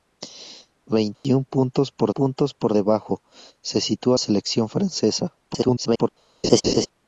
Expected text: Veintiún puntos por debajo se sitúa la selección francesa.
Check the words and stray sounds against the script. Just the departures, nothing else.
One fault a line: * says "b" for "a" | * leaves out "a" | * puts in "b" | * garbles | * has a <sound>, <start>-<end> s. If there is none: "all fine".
* has a dropout, 1.1-1.2 s
* puts in "puntos por"
* leaves out "la"
* garbles
* has a laugh, 6.4-6.9 s